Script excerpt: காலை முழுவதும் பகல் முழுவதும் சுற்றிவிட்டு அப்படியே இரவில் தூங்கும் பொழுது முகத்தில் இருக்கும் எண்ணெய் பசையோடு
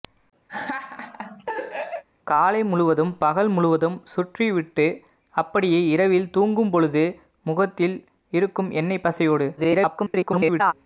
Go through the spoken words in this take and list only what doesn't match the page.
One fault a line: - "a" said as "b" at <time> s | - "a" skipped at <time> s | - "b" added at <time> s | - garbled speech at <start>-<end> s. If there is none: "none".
- garbled speech at 9.6-10.7 s